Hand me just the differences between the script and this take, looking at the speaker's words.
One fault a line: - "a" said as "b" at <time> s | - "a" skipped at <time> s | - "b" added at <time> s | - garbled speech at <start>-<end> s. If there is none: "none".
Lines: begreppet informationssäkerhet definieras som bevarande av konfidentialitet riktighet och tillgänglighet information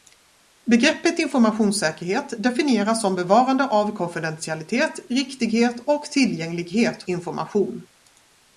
none